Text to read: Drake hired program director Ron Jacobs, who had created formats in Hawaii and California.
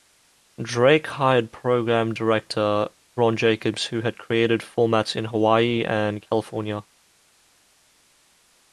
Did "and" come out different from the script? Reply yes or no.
no